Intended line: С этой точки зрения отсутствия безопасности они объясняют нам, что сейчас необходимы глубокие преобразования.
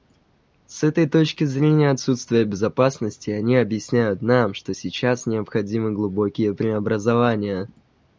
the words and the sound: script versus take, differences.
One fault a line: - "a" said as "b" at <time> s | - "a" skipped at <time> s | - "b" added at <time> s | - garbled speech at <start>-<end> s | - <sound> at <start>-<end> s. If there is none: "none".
none